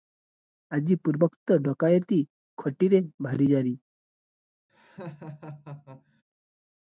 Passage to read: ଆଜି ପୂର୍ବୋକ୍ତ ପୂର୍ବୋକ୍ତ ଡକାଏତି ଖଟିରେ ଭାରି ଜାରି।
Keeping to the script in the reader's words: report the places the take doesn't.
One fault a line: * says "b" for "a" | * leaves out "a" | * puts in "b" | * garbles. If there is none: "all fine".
* leaves out "ପୂର୍ବୋକ୍ତ"